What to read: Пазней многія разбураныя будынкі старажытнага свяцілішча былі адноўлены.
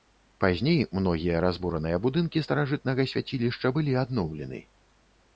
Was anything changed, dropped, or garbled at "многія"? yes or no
no